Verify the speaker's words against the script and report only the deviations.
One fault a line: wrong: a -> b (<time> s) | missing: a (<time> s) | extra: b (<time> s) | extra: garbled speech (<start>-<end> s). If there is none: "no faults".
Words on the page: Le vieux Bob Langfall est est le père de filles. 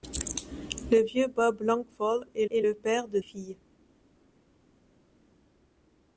no faults